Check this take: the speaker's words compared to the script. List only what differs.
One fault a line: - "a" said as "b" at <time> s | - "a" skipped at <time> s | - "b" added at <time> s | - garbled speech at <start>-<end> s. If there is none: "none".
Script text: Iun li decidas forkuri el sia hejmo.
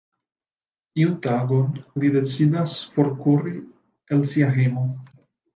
- "tagon" added at 1.2 s